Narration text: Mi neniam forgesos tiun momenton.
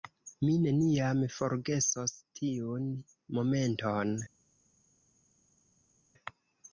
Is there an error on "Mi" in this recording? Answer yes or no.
no